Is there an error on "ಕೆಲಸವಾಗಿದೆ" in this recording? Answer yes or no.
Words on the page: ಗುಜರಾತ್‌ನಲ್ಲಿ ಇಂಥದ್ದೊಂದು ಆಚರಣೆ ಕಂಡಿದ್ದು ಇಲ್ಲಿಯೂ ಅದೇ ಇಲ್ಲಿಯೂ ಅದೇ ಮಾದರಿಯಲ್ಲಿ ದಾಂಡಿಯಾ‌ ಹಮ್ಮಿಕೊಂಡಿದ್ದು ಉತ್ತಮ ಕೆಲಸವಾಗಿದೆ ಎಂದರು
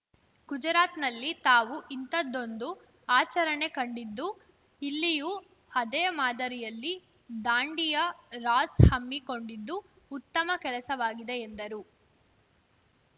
no